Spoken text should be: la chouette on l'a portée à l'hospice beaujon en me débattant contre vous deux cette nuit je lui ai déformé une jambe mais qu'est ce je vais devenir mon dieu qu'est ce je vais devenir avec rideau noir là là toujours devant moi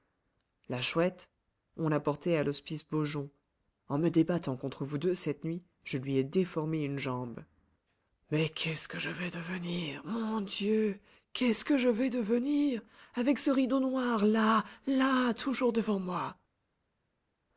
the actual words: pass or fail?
fail